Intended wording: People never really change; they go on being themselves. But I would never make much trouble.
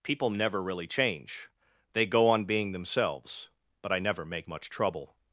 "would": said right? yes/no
no